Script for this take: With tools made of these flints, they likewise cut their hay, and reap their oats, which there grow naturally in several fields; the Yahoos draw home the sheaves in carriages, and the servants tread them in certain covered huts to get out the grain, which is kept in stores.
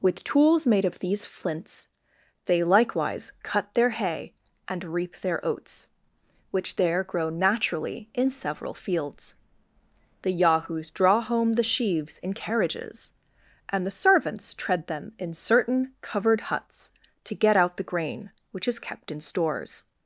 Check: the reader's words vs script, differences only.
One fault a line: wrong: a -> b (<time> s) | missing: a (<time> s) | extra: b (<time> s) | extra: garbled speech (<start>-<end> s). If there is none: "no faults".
no faults